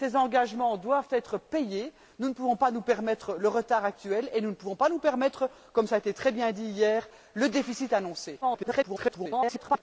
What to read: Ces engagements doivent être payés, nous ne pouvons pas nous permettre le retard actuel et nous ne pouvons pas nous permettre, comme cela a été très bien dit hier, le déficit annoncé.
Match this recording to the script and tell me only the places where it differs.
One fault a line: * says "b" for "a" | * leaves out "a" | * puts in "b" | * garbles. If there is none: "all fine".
* garbles